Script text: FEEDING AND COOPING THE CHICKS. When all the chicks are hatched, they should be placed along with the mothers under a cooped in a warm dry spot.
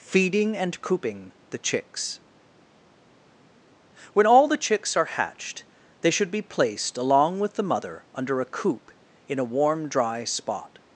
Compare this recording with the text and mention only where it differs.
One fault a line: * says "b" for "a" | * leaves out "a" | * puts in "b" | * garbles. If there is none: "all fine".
* says "mother" for "mothers"
* says "coop" for "cooped"